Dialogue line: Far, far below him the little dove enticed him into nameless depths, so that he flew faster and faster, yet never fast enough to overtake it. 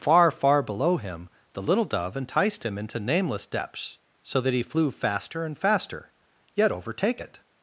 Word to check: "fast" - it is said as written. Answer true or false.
false